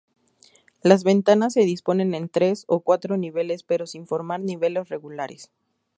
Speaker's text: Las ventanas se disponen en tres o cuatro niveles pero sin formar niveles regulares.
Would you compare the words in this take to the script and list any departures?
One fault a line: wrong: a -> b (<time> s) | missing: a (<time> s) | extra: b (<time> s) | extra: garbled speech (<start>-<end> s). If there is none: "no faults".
no faults